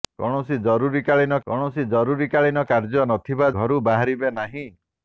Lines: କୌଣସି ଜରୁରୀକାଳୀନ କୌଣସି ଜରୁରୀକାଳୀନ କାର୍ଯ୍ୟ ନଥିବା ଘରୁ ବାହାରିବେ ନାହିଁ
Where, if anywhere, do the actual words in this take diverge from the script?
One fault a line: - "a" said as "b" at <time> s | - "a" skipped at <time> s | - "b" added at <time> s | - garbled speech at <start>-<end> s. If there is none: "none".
none